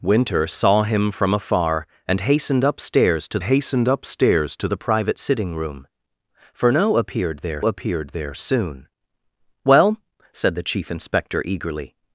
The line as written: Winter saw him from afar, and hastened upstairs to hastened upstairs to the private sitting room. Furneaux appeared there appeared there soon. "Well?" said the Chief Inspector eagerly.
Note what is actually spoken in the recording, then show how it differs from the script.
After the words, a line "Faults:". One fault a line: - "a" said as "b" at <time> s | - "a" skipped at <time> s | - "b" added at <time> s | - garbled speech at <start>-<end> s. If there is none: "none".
Winter saw him from afar, and hastened upstairs to hastened upstairs to the private sitting room. Furneaux appeared there appeared there soon. "Well?" said the Chief Inspector eagerly.
Faults:
none